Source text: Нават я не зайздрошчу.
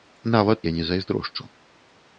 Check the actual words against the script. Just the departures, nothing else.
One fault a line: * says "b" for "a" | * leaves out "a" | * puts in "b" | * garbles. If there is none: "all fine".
all fine